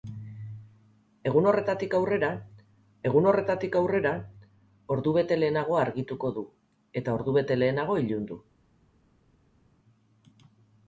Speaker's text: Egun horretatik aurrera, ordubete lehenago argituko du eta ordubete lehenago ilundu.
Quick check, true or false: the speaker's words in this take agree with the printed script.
false